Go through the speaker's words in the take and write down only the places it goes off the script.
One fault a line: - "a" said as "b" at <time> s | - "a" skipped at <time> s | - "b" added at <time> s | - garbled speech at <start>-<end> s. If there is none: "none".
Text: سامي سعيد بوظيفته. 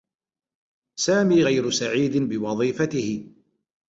- "غير" added at 1.4 s